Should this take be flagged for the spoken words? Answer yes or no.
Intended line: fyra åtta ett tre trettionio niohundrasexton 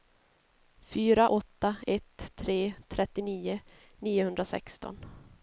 no